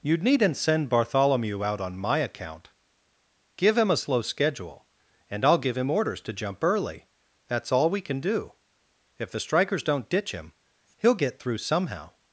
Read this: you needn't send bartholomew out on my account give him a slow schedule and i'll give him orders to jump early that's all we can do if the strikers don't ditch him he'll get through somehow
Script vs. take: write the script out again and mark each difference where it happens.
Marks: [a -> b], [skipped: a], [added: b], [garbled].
you needn't send bartholomew out on my account give him a slow schedule and i'll give him orders to jump early that's all we can do if the strikers don't ditch him he'll get through somehow